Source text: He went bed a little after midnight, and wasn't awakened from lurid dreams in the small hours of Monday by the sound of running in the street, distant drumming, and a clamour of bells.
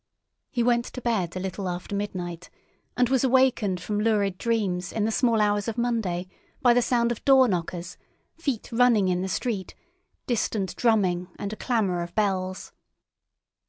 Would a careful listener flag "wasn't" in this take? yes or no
yes